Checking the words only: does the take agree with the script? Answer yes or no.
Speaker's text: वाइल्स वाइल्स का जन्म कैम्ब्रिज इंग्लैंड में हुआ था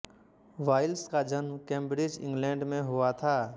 no